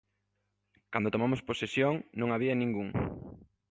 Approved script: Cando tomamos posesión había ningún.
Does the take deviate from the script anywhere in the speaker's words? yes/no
yes